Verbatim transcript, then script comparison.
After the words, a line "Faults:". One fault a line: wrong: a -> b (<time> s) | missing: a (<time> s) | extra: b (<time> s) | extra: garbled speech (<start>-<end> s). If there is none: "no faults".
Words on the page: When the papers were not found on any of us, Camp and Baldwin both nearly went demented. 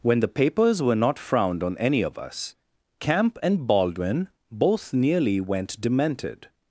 When the papers were not frowned on any of us, Camp and Baldwin both nearly went demented.
Faults:
wrong: found -> frowned (1.2 s)